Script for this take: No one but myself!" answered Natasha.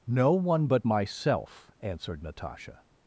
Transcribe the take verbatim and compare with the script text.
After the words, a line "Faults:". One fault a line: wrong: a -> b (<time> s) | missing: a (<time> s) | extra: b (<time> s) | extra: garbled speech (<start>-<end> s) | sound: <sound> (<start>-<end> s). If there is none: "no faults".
No one but myself!" answered Natasha.
Faults:
no faults